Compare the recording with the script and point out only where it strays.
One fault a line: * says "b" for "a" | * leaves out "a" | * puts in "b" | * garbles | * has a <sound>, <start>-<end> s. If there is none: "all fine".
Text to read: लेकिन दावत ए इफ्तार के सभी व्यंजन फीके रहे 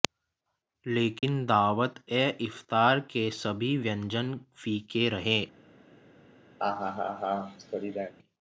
* has a dropout, 1.2-1.2 s
* has a laugh, 6.6-8.1 s